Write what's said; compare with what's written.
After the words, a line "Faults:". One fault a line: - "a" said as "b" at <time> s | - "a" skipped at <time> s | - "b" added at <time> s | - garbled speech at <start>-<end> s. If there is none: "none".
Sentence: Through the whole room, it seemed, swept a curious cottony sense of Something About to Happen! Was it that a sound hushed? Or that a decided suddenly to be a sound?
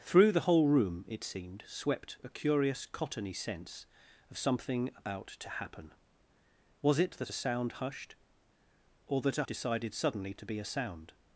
Through the whole room, it seemed, swept a curious cottony sense of Something About to Happen! Was it that a sound hushed? Or that a decided suddenly to be a sound?
Faults:
none